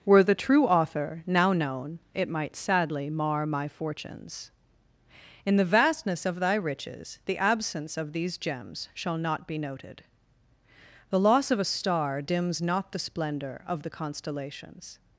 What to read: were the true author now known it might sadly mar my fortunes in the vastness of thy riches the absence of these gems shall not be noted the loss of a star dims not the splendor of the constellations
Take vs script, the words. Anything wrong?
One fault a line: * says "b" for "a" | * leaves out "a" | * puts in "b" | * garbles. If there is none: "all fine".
all fine